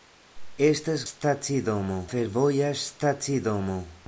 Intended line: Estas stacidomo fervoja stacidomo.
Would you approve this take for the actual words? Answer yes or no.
yes